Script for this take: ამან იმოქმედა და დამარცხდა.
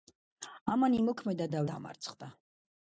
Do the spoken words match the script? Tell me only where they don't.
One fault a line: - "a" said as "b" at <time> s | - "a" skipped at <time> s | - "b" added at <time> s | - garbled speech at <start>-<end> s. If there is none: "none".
none